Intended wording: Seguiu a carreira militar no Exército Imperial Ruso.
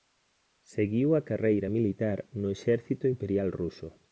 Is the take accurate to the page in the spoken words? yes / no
yes